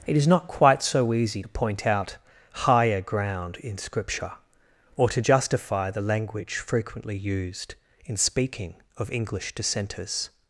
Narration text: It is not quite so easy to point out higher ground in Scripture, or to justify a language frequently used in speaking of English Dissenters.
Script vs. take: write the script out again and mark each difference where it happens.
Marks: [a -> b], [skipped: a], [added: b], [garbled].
It is not quite so easy to point out higher ground in Scripture, or to justify [a -> the] language frequently used in speaking of English Dissenters.